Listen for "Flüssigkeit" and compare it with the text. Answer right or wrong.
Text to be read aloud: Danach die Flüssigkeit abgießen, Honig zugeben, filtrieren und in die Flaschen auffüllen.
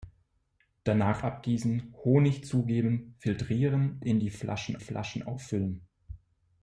wrong